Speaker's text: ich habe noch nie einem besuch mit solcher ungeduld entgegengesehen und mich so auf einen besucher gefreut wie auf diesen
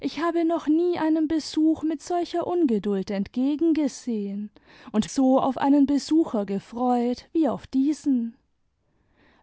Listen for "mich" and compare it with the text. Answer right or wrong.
wrong